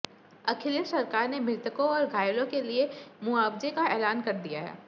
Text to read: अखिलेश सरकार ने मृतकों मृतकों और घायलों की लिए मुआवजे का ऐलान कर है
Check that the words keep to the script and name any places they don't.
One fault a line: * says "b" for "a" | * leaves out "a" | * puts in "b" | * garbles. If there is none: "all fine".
* leaves out "मृतकों"
* says "के" for "की"
* puts in "दिया"